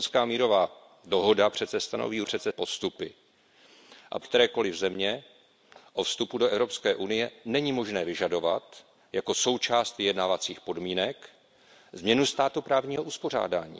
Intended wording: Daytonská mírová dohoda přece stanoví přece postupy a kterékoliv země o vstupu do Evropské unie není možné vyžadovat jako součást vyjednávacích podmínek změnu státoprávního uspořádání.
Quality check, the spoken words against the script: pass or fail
pass